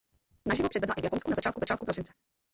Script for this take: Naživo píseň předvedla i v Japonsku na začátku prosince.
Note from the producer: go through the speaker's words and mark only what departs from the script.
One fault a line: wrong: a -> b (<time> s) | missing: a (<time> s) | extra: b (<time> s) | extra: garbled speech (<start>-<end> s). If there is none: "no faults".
missing: píseň (0.7 s)
extra: začátku (1.6 s)